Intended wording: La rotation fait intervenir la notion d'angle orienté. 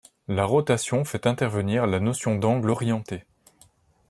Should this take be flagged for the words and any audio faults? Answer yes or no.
no